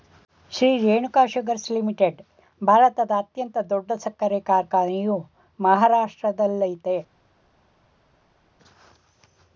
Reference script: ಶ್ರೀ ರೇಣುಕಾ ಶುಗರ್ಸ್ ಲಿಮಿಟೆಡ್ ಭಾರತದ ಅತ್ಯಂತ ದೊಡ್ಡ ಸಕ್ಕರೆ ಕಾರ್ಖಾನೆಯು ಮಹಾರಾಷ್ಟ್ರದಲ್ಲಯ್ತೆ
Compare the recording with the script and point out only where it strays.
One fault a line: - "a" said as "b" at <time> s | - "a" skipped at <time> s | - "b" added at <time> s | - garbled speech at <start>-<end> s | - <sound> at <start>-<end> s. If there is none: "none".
none